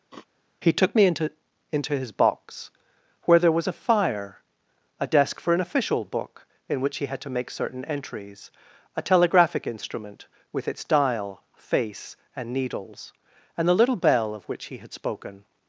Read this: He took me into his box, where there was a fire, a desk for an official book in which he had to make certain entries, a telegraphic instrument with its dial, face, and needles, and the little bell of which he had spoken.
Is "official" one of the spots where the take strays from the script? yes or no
no